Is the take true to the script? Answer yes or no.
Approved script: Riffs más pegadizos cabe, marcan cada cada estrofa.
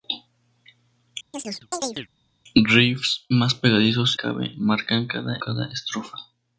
yes